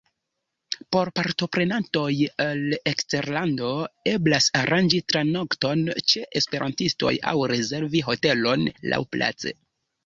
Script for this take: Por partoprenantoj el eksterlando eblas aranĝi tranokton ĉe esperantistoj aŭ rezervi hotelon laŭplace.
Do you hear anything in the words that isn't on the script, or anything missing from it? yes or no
no